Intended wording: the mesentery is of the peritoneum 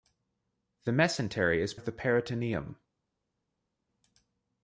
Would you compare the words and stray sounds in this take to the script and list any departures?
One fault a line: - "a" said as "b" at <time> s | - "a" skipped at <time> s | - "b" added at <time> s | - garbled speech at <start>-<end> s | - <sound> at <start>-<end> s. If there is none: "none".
none